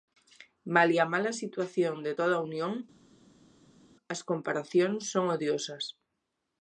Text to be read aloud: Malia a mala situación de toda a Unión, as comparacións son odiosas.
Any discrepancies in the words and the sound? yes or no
no